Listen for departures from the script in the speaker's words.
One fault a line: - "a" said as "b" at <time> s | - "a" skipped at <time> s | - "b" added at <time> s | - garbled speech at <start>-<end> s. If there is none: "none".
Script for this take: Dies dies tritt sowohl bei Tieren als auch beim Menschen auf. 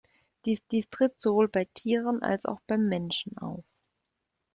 none